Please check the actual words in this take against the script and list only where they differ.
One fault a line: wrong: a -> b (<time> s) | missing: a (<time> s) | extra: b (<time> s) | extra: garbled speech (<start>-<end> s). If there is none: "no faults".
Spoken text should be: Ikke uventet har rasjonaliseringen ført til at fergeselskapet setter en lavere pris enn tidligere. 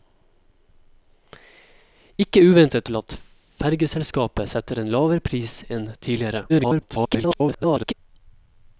missing: har rasjonaliseringen ført (2.9 s)
extra: garbled speech (6.5-7.9 s)